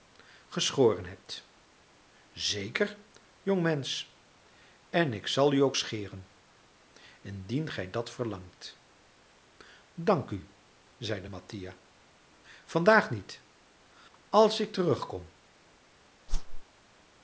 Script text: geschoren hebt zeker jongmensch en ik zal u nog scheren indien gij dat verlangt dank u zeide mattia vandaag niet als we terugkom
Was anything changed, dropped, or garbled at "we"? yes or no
yes